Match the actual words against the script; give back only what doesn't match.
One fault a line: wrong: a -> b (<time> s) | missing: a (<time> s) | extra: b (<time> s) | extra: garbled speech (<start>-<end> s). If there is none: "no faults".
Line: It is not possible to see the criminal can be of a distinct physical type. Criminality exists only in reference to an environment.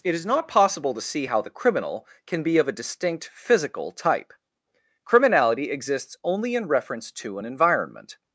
extra: how (1.3 s)